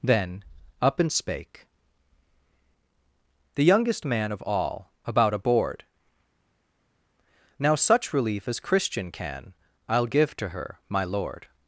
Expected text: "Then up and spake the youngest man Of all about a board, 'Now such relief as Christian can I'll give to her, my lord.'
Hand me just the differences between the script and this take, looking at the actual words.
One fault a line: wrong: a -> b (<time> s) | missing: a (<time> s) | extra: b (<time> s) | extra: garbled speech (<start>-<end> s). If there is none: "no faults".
no faults